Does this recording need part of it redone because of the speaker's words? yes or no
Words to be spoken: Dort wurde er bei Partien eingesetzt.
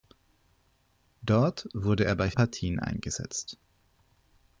no